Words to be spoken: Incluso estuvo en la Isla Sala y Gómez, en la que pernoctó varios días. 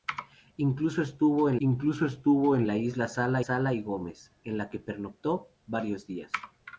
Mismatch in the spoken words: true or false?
true